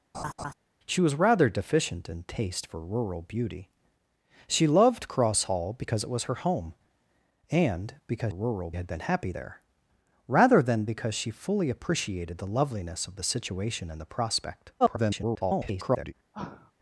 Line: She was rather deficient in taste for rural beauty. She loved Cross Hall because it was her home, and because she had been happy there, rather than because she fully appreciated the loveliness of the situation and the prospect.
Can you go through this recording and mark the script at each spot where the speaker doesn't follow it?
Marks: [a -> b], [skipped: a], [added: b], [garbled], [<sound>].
[laugh] She was rather deficient in taste for rural beauty. She loved Cross Hall because it was her home, and because [she -> rural] had been happy there, rather than because she fully appreciated the loveliness of the situation and the prospect. [garbled] [sigh]